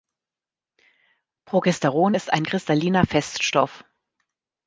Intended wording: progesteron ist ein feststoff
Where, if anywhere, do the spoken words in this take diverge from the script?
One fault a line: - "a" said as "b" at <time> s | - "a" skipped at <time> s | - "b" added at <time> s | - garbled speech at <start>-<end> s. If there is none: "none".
- "kristalliner" added at 2.4 s